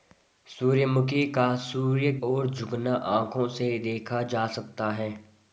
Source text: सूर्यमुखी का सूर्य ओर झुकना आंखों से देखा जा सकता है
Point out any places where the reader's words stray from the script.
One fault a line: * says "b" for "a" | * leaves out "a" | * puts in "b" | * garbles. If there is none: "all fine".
all fine